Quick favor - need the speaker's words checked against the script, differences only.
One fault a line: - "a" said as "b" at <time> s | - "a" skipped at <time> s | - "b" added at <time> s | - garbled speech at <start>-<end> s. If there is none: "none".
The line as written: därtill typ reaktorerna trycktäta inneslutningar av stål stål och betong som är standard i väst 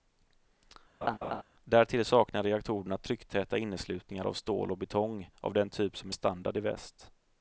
- "typ" said as "saknar" at 2.0 s
- "stål" skipped at 4.7 s
- "av den typ" added at 5.4 s